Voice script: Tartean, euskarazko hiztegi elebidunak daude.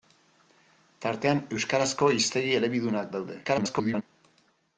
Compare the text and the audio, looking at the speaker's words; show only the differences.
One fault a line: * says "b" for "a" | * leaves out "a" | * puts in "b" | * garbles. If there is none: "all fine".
* garbles